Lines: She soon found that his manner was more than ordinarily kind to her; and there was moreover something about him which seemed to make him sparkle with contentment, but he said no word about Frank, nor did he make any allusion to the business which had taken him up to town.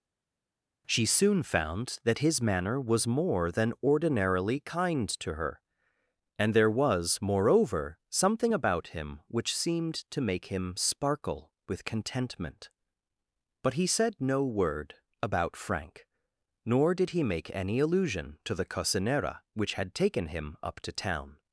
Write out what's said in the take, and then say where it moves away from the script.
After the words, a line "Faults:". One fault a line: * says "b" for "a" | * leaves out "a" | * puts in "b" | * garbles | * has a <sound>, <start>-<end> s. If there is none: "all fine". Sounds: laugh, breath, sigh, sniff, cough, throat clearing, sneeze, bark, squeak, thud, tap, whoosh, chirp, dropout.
She soon found that his manner was more than ordinarily kind to her; and there was moreover something about him which seemed to make him sparkle with contentment, but he said no word about Frank, nor did he make any allusion to the cocinera which had taken him up to town.
Faults:
* says "cocinera" for "business"